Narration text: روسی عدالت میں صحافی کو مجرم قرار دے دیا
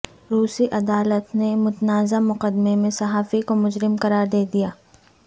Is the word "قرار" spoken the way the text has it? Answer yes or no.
yes